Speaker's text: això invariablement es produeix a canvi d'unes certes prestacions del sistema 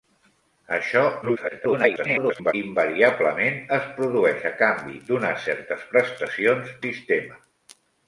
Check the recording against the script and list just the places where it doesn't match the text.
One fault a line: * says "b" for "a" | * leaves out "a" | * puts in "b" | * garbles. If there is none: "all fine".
* garbles
* leaves out "del"